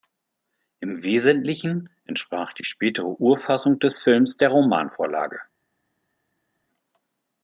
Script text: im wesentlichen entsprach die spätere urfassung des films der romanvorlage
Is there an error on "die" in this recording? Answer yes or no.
no